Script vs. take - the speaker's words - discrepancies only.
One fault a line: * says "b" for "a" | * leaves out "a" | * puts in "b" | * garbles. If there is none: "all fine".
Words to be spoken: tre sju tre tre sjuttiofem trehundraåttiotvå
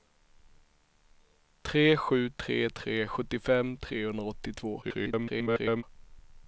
* garbles